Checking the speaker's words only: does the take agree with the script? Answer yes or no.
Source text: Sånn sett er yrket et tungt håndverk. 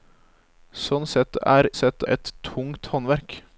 no